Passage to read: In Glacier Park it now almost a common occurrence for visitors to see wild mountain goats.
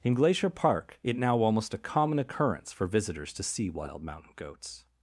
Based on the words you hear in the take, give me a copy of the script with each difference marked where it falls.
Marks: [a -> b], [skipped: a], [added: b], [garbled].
In Glacier Park it now almost a common occurrence for visitors to see wild mountain goats.